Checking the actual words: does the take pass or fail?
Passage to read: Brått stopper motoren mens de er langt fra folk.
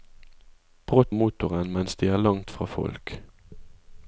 fail